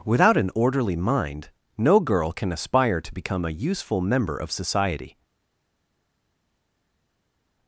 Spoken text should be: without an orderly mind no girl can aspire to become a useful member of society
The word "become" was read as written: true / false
true